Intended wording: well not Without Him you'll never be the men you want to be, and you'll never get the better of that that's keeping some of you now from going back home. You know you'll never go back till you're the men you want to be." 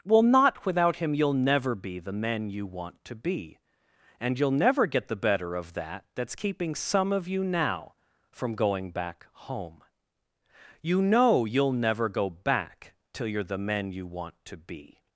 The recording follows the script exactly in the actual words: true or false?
true